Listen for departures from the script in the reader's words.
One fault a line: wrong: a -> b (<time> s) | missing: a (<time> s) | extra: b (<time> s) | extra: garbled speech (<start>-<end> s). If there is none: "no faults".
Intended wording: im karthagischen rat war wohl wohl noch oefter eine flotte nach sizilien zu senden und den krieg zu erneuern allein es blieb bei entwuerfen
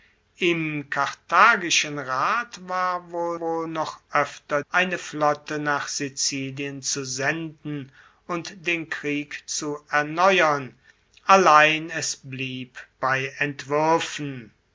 no faults